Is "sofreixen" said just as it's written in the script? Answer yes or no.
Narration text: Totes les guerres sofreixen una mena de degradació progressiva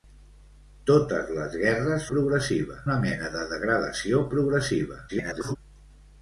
no